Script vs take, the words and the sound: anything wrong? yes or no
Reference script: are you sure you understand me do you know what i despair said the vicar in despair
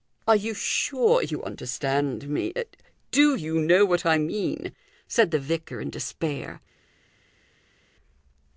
yes